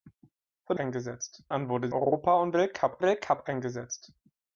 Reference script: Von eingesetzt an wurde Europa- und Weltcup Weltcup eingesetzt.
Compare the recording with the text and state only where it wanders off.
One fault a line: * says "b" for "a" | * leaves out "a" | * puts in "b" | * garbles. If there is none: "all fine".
all fine